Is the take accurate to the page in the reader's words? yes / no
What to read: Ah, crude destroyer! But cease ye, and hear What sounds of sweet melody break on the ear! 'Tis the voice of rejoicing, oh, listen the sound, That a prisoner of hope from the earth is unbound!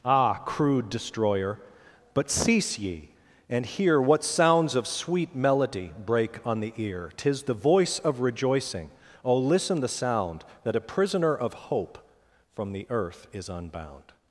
yes